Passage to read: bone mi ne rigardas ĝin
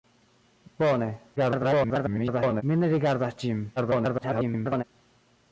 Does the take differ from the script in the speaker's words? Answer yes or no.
yes